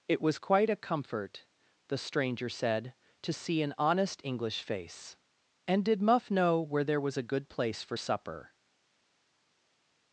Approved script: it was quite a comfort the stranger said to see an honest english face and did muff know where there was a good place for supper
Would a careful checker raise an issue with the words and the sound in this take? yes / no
no